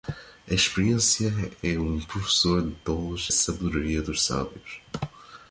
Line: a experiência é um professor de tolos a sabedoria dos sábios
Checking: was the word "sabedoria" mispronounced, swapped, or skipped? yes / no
no